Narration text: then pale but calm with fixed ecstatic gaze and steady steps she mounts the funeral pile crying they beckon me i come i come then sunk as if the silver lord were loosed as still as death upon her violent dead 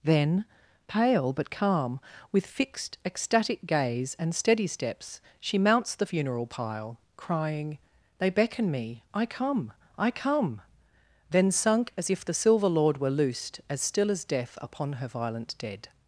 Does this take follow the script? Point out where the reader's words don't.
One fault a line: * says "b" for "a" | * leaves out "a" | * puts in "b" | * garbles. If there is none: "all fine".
all fine